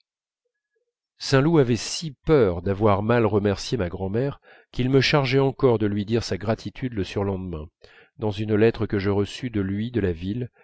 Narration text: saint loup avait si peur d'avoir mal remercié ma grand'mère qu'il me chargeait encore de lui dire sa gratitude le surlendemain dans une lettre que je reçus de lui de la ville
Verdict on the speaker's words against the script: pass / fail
pass